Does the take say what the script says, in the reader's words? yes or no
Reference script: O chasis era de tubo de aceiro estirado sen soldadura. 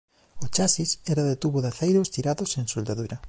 yes